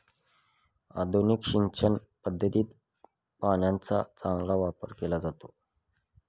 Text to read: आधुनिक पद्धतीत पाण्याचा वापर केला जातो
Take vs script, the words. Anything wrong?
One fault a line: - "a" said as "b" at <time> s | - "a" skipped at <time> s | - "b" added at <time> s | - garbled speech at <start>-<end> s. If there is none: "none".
- "सिंचन" added at 1.4 s
- "चांगला" added at 4.2 s